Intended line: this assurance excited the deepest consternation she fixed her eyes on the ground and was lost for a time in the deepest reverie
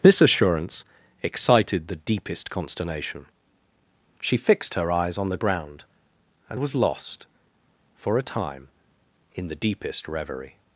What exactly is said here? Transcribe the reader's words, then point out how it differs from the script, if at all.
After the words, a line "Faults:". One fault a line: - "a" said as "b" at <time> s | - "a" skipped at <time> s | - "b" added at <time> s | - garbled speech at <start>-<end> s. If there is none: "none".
this assurance excited the deepest consternation she fixed her eyes on the ground and was lost for a time in the deepest reverie
Faults:
none